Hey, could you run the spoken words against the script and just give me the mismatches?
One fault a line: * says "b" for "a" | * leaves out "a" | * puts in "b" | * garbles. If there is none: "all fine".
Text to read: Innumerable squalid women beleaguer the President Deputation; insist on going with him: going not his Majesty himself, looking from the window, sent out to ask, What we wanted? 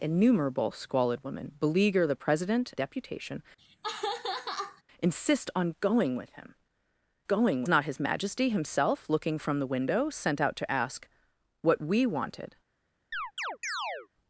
all fine